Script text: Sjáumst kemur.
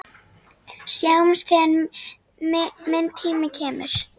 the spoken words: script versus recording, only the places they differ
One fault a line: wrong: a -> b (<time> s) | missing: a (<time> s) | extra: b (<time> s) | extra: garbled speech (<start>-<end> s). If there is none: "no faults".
extra: þegar minn tími (1.5 s)